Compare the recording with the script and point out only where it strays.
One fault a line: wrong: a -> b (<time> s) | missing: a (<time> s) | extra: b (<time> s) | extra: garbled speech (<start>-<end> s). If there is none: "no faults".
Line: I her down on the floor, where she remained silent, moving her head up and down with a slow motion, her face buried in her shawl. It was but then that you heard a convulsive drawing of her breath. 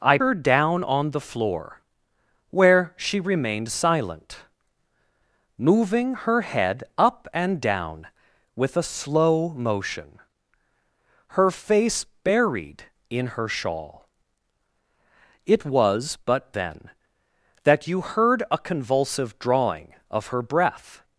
no faults